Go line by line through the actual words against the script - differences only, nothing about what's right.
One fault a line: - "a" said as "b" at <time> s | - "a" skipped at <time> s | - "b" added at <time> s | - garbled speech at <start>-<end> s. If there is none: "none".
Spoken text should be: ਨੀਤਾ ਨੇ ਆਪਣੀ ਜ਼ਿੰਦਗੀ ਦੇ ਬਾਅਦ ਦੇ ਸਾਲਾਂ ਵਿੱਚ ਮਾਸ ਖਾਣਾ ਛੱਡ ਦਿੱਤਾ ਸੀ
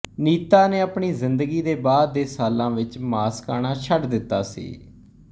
none